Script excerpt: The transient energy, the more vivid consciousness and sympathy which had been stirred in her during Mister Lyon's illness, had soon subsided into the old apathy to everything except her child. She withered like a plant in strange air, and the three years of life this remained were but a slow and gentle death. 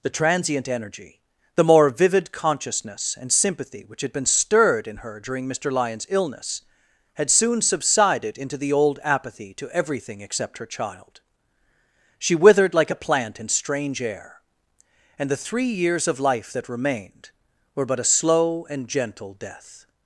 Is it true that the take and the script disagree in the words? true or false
true